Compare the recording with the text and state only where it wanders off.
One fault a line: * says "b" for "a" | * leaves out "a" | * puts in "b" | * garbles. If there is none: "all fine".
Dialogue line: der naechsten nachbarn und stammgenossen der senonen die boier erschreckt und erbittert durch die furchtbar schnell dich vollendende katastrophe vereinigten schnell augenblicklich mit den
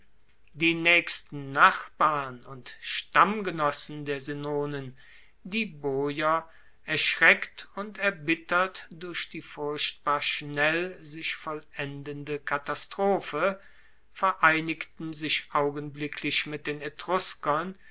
* says "die" for "der"
* says "sich" for "dich"
* says "sich" for "schnell"